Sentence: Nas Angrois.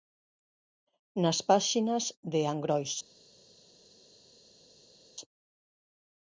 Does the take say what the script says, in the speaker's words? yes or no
no